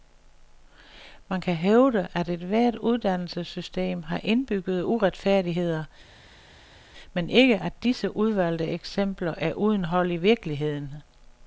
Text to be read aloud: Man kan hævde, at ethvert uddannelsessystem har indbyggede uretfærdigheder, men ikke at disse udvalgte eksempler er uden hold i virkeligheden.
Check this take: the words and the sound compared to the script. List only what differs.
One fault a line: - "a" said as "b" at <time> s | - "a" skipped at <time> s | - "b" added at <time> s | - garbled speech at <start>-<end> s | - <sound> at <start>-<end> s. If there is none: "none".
none